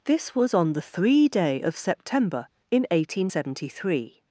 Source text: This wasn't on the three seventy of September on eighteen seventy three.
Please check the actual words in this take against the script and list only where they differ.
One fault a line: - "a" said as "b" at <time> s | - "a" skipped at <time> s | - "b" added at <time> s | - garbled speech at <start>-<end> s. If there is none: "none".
- "wasn't" said as "was" at 0.3 s
- "seventy" said as "day" at 1.3 s
- "on" said as "in" at 2.7 s